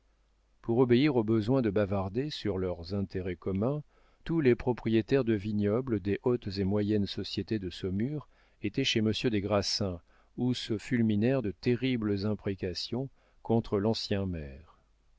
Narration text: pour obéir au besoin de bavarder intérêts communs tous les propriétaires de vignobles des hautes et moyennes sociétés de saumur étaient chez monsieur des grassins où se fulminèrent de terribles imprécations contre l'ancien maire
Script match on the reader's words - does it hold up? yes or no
no